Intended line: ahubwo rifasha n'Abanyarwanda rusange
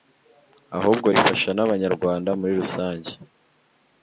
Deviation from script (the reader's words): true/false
true